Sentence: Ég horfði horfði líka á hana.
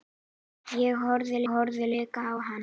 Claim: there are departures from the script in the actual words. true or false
false